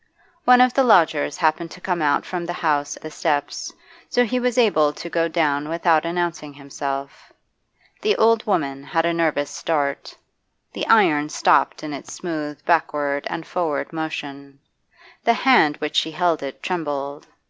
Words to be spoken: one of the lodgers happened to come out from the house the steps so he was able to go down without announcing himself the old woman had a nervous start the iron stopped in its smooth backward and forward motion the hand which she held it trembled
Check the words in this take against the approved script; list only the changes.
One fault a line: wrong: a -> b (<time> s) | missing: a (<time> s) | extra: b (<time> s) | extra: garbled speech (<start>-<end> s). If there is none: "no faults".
no faults